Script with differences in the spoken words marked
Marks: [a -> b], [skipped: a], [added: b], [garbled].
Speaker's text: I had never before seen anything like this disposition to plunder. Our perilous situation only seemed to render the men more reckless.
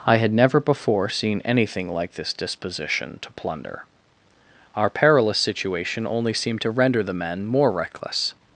I had never before seen anything like this disposition to plunder. Our perilous situation only seemed to render the men more reckless.